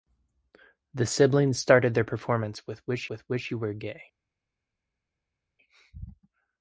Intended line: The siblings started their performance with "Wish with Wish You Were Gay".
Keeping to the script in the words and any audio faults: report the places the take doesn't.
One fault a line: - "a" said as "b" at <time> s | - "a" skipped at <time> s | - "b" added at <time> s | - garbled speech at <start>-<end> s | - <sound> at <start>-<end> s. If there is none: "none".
none